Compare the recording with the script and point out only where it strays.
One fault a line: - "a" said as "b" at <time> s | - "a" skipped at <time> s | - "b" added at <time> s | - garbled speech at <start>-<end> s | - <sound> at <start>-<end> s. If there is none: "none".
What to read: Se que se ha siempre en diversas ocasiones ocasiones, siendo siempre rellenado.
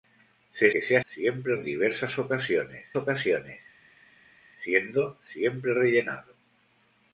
none